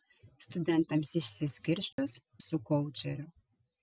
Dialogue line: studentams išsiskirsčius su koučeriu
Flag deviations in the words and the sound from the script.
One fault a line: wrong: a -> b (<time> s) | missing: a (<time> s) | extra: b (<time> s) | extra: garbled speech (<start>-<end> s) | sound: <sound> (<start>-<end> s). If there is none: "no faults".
sound: dropout (1.9-2.0 s)